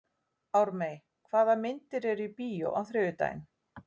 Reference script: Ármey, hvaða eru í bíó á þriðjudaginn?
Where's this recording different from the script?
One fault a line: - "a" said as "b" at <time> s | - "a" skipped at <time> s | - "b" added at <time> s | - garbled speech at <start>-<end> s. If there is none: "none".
- "myndir" added at 1.6 s